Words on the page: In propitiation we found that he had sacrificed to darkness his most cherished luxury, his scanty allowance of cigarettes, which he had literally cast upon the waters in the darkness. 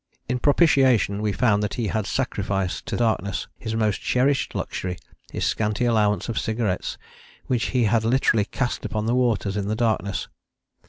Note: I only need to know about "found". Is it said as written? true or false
true